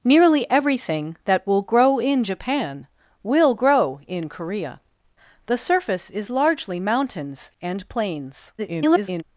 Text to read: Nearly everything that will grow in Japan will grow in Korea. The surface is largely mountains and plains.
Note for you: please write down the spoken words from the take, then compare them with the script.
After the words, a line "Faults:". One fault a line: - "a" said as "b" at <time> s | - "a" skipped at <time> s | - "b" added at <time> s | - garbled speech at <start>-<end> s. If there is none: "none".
Nearly everything that will grow in Japan will grow in Korea. The surface is largely mountains and plains. [garbled]
Faults:
- garbled speech at 8.6-9.2 s